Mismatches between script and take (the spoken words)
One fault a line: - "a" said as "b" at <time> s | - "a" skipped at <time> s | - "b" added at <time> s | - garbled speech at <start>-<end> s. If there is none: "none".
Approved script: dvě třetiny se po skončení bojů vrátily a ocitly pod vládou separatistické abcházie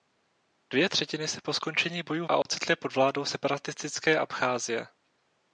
- "vrátily" skipped at 2.3 s